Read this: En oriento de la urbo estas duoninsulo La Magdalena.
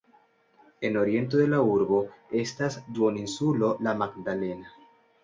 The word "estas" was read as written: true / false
true